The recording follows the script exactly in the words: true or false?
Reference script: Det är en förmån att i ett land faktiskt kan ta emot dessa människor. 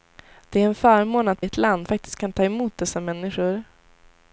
true